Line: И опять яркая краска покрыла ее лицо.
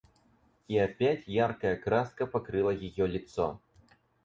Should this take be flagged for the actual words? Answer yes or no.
no